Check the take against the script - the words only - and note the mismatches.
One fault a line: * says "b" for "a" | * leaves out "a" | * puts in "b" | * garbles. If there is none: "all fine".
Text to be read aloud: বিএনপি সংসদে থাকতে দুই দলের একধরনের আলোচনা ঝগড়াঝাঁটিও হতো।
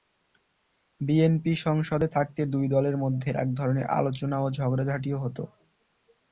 * puts in "মধ্যে"
* puts in "ও"